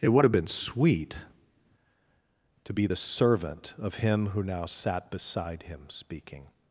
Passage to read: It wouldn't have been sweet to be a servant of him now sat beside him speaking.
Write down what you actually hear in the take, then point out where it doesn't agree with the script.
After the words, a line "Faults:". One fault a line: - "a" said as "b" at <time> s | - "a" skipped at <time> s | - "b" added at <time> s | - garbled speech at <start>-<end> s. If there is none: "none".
It would have been sweet to be the servant of him who now sat beside him speaking.
Faults:
- "wouldn't" said as "would" at 0.1 s
- "a" said as "the" at 2.8 s
- "who" added at 4.3 s